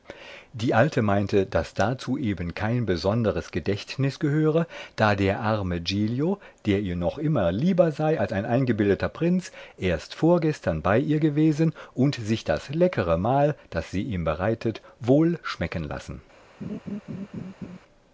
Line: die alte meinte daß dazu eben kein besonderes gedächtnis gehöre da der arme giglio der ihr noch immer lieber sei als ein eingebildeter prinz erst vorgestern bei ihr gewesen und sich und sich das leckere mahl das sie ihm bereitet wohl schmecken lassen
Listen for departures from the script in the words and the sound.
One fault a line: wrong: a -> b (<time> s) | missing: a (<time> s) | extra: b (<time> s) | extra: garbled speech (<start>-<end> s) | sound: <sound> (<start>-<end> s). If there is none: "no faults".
missing: und sich (12.4 s)
sound: laugh (16.6-17.8 s)